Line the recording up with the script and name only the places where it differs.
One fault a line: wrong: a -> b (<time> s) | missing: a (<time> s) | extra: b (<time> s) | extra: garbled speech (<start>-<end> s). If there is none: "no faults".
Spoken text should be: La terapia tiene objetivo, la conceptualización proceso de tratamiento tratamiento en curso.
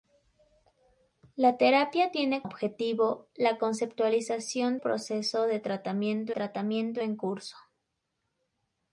no faults